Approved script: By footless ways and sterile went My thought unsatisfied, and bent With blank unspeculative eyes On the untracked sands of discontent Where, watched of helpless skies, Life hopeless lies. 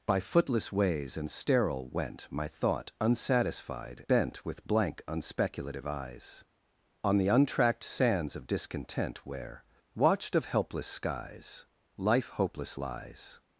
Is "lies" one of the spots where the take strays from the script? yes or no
no